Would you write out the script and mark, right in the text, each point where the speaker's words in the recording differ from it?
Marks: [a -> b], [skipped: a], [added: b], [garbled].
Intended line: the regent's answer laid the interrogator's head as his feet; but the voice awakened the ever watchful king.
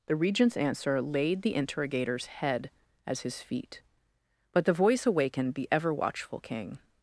the regent's answer laid the interrogator's head as his feet; but the voice awakened the ever watchful king.